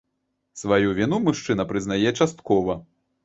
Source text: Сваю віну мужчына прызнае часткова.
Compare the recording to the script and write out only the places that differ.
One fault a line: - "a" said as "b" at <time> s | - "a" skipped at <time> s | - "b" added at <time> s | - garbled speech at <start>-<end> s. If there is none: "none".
none